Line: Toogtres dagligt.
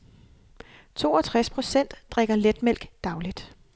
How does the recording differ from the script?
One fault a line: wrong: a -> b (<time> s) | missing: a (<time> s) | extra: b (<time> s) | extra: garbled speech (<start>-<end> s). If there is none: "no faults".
extra: procent drikker letmælk (1.5 s)